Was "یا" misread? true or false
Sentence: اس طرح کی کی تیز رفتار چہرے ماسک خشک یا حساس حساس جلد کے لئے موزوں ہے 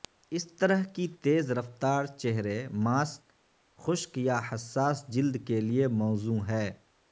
false